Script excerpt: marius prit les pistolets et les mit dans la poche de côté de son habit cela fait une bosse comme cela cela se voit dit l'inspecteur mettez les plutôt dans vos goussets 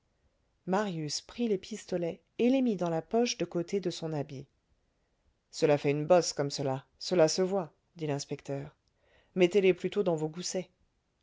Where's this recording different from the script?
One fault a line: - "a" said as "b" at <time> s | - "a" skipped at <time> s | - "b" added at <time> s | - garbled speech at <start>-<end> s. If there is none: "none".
none